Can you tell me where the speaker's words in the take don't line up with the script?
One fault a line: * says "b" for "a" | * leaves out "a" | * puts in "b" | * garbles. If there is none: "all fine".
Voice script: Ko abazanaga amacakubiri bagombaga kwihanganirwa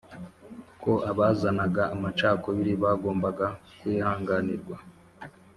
all fine